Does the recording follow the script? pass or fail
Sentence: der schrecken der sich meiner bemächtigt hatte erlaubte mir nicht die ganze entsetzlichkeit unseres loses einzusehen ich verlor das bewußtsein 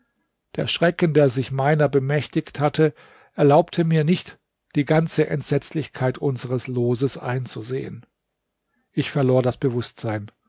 pass